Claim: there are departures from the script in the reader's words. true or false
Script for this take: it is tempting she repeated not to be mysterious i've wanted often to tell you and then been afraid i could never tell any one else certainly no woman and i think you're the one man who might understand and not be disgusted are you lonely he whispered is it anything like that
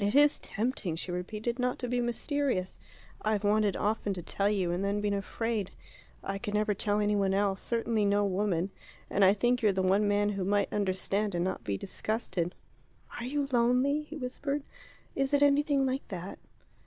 false